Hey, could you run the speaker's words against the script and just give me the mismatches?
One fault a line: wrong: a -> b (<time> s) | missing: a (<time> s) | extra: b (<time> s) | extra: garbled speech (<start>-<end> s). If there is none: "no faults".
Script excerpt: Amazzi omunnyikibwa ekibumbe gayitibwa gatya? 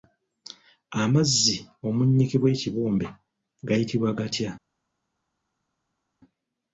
no faults